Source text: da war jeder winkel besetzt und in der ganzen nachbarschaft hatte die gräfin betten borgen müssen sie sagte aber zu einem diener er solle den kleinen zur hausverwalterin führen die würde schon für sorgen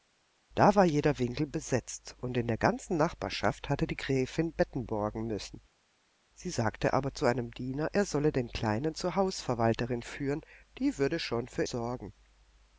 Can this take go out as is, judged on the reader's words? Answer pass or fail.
pass